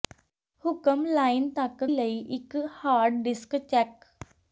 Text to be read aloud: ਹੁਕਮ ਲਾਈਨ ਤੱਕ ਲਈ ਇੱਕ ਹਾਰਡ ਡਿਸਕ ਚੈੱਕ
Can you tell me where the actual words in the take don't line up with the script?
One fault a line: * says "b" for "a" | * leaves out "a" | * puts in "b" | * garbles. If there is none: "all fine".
all fine